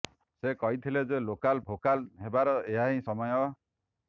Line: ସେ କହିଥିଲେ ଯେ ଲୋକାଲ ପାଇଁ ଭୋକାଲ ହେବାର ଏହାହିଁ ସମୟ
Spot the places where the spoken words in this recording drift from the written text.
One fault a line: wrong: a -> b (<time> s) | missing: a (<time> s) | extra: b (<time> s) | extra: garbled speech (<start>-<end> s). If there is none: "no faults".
missing: ପାଇଁ (1.6 s)